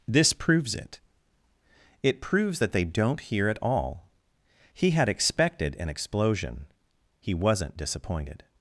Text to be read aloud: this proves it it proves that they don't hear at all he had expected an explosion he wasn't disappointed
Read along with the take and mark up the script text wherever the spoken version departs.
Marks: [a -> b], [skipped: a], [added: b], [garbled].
this proves it it proves that they don't hear at all he had expected an explosion he wasn't disappointed